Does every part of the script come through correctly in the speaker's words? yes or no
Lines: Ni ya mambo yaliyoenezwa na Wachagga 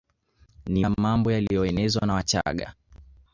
yes